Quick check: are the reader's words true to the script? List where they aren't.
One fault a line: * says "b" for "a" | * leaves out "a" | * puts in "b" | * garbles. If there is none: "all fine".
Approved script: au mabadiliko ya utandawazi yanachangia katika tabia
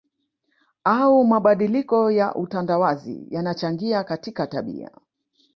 all fine